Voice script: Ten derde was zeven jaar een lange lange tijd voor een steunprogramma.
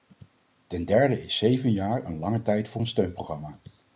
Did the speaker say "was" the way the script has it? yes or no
no